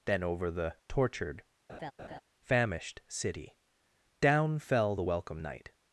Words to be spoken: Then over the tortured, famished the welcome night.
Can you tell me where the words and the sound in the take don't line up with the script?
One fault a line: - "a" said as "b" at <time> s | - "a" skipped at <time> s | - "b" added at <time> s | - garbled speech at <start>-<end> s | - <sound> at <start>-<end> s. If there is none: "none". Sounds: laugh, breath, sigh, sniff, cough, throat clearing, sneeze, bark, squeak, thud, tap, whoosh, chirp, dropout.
- laugh at 1.7-2.2 s
- "city down fell" added at 3.1 s